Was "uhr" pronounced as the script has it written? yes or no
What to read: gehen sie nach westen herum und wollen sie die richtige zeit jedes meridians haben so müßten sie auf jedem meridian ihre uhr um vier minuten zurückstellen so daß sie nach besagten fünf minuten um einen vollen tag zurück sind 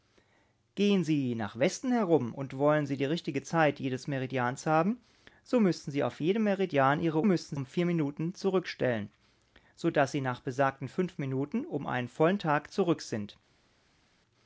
no